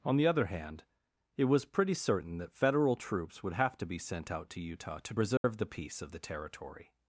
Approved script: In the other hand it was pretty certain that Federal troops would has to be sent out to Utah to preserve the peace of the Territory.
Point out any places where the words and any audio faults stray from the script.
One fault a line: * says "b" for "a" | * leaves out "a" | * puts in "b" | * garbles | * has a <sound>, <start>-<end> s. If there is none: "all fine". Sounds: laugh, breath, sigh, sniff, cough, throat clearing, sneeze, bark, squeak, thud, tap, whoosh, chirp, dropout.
* says "On" for "In"
* says "have" for "has"
* has a dropout, 5.4-5.4 s